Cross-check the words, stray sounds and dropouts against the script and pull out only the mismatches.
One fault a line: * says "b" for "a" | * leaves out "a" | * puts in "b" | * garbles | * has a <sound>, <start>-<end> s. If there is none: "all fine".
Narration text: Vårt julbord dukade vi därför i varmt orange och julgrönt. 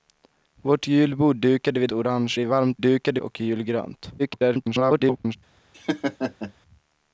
* says "orange" for "därför"
* says "dukade" for "orange"
* garbles
* has a laugh, 5.7-6.5 s